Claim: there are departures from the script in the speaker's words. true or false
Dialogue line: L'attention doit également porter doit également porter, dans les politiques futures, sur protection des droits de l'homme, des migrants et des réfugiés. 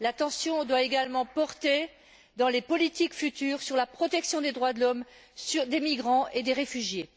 true